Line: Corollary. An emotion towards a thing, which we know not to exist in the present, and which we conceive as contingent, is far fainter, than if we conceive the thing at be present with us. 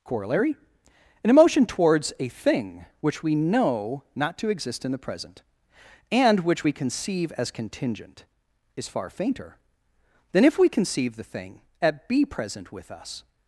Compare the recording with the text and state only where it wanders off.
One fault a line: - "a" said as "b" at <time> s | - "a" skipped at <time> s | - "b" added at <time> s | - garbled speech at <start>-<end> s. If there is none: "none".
none